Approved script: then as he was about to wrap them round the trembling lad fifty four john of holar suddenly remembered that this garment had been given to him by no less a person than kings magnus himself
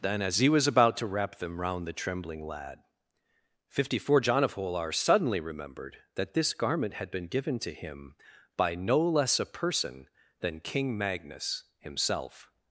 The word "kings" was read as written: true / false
false